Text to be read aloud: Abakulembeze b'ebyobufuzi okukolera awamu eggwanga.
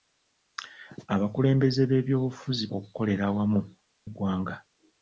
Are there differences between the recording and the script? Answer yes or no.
no